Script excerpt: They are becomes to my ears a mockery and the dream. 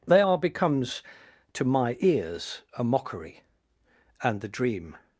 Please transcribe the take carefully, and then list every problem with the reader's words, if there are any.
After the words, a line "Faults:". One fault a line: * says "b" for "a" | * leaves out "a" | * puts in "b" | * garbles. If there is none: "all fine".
They are becomes to my ears a mockery and the dream.
Faults:
all fine